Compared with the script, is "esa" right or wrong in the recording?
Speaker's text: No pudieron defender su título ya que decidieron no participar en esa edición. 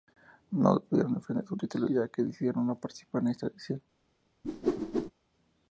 wrong